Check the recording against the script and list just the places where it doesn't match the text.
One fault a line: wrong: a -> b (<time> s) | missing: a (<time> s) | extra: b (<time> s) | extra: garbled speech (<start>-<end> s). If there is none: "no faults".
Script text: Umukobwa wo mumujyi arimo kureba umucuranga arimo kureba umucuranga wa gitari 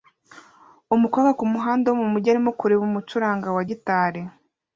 extra: kumuhanda (1.4 s)
missing: arimo kureba umucuranga (3.5 s)